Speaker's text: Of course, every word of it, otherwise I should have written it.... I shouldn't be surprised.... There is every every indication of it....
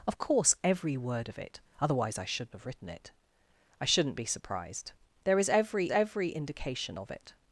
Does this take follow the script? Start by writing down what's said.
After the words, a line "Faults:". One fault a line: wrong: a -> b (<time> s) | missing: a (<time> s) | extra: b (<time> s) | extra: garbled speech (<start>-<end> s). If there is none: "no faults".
Of course, every word of it, otherwise I should have written it.... I shouldn't be surprised.... There is every every indication of it....
Faults:
no faults